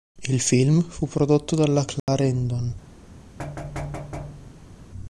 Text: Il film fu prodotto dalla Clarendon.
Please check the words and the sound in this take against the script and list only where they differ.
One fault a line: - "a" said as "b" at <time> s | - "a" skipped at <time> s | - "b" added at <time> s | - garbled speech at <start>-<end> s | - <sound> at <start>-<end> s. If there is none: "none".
- dropout at 2.0-2.1 s
- thud at 3.4-4.8 s